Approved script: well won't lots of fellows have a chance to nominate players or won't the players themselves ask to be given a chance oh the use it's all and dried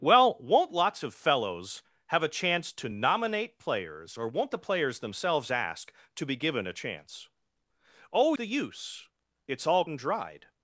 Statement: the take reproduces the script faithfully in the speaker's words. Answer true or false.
true